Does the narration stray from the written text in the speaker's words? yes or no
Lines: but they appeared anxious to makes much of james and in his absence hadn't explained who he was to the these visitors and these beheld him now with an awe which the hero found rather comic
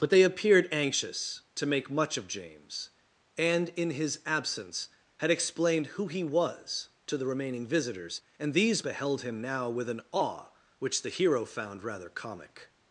yes